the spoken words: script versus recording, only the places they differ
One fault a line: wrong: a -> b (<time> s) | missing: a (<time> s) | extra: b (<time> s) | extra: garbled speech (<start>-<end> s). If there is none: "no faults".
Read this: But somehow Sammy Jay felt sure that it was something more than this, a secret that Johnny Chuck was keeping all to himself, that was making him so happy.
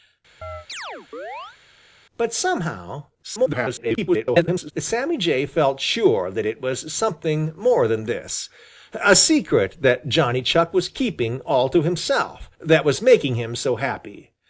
extra: garbled speech (3.2-4.7 s)